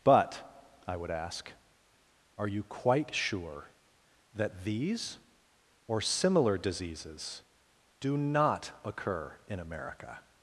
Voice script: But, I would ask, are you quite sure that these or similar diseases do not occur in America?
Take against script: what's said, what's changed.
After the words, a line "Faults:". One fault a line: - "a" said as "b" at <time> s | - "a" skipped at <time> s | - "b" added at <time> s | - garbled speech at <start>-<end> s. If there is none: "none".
But, I would ask, are you quite sure that these or similar diseases do not occur in America?
Faults:
none